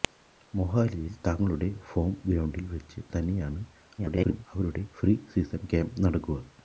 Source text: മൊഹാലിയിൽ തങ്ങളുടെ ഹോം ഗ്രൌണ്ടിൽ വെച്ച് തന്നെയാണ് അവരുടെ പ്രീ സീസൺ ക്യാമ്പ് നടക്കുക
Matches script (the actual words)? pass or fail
fail